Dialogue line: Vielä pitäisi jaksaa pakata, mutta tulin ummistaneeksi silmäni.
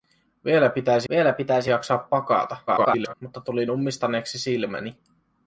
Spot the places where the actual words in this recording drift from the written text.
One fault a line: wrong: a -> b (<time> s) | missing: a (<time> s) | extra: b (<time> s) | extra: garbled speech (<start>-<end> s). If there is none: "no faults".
extra: vielä pitäisi (1.1 s)
extra: garbled speech (2.7-3.1 s)